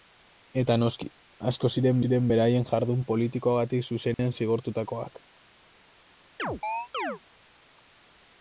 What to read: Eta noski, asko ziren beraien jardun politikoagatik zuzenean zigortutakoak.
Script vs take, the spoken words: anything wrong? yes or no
yes